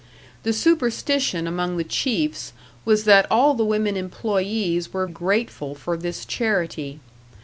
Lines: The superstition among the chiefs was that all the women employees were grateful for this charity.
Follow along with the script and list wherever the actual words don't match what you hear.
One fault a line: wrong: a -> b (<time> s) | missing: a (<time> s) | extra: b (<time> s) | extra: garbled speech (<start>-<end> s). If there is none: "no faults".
no faults